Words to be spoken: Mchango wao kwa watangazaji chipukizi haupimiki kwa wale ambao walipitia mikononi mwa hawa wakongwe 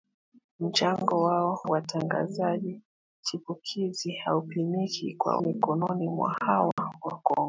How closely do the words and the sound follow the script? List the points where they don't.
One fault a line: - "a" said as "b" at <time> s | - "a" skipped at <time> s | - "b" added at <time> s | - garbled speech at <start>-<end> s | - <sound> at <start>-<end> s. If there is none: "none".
- "kwa" skipped at 1.6 s
- "wale ambao walipitia" skipped at 5.4 s
- dropout at 6.7-6.8 s